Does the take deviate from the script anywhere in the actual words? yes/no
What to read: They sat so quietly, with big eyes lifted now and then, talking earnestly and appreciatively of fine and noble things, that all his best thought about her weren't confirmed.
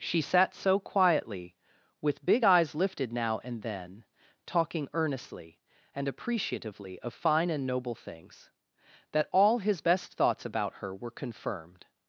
yes